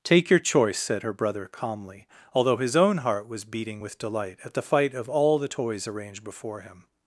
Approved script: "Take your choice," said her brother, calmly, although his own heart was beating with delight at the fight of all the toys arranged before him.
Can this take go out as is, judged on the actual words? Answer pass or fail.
pass